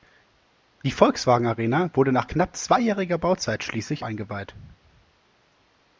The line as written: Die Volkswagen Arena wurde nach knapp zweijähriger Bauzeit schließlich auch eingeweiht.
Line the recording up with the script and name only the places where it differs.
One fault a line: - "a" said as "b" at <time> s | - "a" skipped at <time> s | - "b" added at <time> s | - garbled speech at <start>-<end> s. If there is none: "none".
- "auch" skipped at 4.1 s